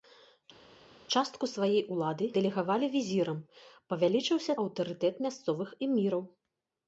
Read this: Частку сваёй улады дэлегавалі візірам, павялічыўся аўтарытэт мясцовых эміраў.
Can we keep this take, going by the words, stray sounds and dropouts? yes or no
yes